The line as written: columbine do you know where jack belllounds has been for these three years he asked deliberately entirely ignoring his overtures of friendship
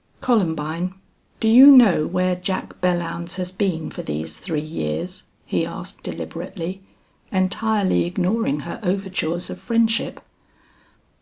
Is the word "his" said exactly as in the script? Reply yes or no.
no